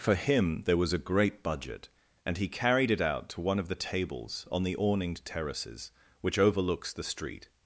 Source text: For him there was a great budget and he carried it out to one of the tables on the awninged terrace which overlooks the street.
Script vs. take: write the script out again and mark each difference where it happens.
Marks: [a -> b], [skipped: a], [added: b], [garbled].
For him there was a great budget and he carried it out to one of the tables on the awninged [terrace -> terraces] which overlooks the street.